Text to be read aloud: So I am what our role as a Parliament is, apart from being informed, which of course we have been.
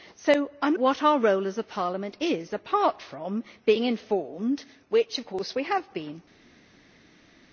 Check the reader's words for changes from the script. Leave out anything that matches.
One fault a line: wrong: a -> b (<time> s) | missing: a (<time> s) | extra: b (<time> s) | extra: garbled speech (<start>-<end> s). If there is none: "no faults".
no faults